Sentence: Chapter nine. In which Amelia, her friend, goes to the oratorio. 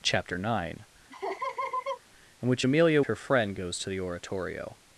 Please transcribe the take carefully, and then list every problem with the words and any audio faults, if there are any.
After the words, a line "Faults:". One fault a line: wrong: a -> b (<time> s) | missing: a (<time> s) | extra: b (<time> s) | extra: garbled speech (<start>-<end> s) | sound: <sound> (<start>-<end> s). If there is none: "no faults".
Chapter nine. In which Amelia, her friend, goes to the oratorio.
Faults:
sound: laugh (1.1-2.0 s)